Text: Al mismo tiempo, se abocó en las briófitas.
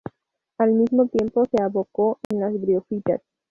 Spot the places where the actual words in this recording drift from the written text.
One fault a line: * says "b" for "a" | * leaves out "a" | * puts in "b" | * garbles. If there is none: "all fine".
all fine